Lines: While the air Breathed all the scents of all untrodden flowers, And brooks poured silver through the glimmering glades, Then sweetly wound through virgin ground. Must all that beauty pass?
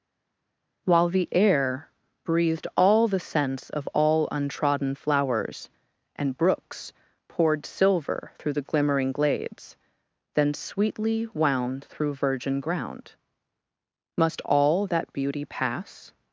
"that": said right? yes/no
yes